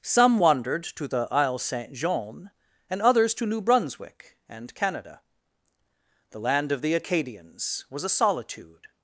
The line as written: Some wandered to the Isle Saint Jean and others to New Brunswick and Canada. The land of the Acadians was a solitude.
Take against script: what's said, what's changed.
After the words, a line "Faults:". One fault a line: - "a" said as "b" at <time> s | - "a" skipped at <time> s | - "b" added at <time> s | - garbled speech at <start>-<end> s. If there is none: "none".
Some wandered to the Isle Saint Jean and others to New Brunswick and Canada. The land of the Acadians was a solitude.
Faults:
none